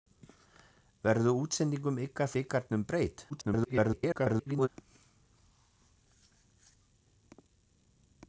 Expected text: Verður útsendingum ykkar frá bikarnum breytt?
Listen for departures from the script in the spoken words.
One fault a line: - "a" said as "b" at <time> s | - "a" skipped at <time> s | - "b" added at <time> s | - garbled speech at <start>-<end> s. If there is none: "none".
- "frá" skipped at 2.3 s
- garbled speech at 3.3-4.7 s